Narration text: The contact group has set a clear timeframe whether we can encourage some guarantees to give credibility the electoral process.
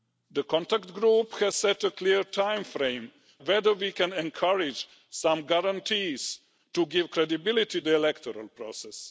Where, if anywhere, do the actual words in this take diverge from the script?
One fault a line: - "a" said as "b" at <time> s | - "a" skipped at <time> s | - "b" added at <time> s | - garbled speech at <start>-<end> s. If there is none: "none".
none